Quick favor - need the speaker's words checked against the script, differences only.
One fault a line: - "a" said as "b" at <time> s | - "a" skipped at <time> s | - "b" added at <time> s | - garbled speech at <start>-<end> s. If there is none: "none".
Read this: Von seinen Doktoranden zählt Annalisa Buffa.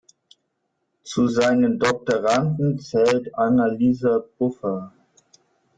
- "Von" said as "Zu" at 1.0 s